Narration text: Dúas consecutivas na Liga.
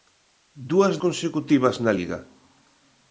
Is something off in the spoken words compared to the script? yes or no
no